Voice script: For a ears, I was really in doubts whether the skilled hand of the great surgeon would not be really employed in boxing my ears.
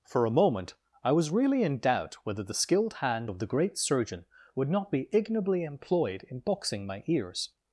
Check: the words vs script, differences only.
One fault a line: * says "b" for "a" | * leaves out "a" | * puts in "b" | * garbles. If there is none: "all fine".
* says "moment" for "ears"
* says "doubt" for "doubts"
* says "ignobly" for "really"